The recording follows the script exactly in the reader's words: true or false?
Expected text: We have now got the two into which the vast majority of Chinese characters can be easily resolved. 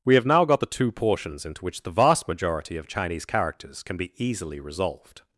false